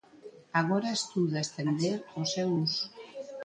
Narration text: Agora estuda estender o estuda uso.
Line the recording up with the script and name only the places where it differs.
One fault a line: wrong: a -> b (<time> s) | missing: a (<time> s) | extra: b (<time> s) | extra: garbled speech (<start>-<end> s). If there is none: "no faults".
wrong: estuda -> seu (2.3 s)